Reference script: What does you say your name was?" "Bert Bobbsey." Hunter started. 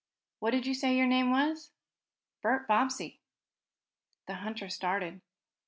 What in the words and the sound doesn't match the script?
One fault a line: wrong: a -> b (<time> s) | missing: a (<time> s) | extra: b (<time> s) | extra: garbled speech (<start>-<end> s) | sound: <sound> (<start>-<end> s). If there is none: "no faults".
wrong: does -> did (0.5 s)
extra: The (4.2 s)